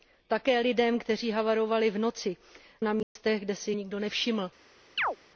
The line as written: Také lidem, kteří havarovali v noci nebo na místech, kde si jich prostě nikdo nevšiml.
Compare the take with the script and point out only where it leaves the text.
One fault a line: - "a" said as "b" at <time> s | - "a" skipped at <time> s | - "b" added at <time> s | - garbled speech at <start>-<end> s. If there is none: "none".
- "nebo" skipped at 2.4 s
- "jich prostě" skipped at 3.7 s